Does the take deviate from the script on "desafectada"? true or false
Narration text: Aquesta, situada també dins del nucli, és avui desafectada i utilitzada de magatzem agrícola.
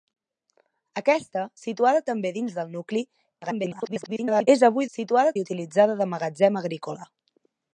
true